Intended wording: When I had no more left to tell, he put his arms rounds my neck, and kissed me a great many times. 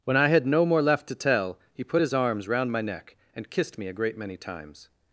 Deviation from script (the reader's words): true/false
true